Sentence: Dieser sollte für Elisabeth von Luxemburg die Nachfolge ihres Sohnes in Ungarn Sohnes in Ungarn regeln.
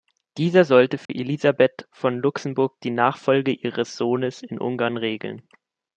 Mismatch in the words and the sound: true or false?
true